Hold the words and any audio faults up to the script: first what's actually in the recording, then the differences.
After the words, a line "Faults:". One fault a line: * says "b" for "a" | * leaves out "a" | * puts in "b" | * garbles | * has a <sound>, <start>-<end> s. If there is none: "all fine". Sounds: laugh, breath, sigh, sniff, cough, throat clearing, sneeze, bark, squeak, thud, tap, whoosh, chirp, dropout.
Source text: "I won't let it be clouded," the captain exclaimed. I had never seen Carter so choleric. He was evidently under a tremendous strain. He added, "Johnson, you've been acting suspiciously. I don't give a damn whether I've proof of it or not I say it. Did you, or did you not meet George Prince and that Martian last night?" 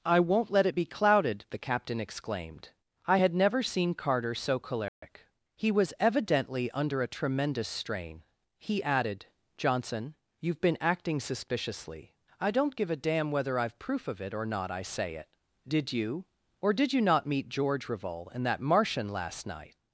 "I won't let it be clouded," the captain exclaimed. I had never seen Carter so choleric. He was evidently under a tremendous strain. He added, "Johnson, you've been acting suspiciously. I don't give a damn whether I've proof of it or not I say it. Did you, or did you not meet George Revol and that Martian last night?"
Faults:
* has a dropout, 4.9-5.0 s
* says "Revol" for "Prince"